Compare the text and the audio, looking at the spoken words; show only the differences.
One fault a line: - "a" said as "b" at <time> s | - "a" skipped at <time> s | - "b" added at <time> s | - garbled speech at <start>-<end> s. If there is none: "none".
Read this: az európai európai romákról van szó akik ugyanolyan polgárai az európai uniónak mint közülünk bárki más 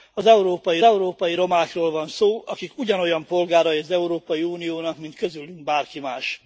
none